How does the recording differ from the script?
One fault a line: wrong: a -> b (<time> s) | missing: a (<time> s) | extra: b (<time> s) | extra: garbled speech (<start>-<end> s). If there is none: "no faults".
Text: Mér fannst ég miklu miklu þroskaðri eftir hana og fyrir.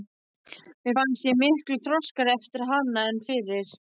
missing: miklu (1.8 s)
wrong: og -> en (3.1 s)